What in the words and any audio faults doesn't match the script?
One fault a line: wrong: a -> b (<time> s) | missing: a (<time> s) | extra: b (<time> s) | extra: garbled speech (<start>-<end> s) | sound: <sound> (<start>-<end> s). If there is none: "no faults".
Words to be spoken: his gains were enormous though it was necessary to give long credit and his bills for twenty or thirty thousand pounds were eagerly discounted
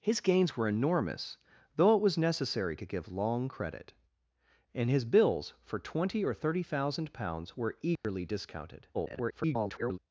sound: dropout (8.0-8.0 s)
extra: garbled speech (8.9-10.0 s)